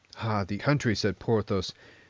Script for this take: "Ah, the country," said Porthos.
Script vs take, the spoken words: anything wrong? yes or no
no